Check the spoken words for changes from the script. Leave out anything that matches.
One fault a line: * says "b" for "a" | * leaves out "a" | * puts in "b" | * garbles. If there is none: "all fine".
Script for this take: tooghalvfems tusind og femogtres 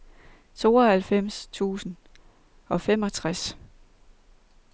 all fine